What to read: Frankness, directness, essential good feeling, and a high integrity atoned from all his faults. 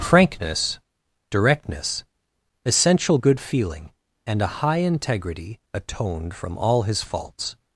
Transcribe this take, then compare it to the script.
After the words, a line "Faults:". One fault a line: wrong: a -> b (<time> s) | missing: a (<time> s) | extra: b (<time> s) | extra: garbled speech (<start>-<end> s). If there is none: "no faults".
Frankness, directness, essential good feeling, and a high integrity atoned from all his faults.
Faults:
no faults